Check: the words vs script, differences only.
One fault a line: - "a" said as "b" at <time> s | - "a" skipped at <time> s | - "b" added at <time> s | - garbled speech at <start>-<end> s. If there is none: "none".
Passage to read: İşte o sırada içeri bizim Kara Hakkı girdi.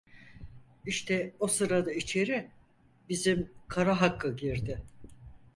none